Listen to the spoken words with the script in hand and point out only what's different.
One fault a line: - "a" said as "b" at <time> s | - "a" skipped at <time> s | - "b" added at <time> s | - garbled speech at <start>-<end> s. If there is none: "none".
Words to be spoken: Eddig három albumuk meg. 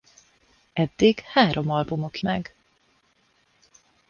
none